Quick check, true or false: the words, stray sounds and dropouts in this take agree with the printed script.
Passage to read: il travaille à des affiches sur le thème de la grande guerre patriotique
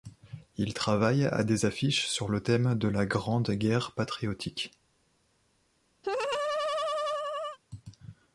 false